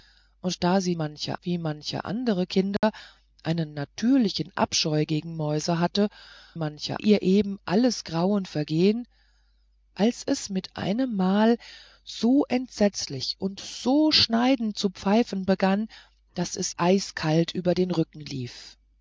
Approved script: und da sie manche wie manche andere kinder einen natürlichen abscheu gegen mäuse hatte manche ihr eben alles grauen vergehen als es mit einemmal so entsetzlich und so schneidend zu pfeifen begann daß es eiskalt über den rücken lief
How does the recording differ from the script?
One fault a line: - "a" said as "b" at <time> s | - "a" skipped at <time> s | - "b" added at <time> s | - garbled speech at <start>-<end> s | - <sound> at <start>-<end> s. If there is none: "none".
- dropout at 2.8-2.8 s